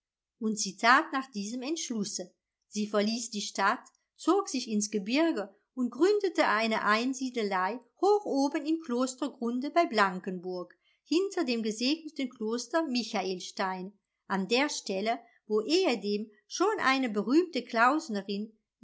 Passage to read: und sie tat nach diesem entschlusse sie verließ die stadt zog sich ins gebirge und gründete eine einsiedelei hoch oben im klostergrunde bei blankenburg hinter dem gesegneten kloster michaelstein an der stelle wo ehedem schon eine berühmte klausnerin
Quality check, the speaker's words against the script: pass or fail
pass